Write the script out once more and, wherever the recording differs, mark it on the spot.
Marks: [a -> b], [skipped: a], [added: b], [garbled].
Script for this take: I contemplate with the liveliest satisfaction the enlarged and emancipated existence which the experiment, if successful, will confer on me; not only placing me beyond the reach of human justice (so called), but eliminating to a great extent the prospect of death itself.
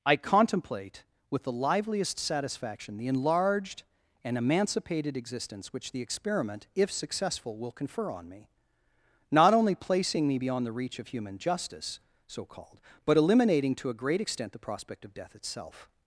I contemplate with the liveliest satisfaction the enlarged and emancipated existence which the experiment, if successful, will confer on me; not only placing me beyond the reach of human justice (so called), but eliminating to a great extent the prospect of death itself.